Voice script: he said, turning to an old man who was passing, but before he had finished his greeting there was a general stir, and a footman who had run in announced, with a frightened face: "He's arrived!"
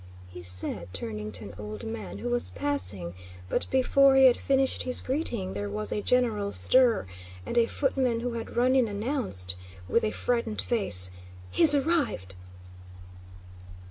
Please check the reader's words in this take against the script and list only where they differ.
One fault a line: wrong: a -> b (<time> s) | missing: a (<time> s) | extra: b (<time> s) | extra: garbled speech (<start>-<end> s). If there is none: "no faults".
no faults